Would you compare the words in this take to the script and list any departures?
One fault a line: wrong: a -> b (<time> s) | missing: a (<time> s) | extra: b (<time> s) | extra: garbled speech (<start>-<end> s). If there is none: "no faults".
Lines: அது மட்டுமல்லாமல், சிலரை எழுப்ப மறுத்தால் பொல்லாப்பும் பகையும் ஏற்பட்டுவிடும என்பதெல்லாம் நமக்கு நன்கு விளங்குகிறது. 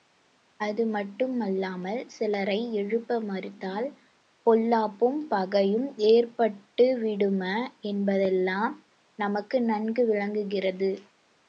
no faults